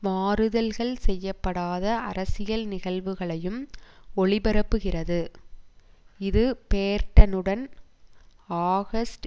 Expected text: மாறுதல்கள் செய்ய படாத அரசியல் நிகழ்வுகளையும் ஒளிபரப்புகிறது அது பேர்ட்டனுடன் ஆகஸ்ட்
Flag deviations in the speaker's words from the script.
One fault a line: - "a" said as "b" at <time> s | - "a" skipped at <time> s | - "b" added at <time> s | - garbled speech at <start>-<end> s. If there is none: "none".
- "அது" said as "இது" at 6.2 s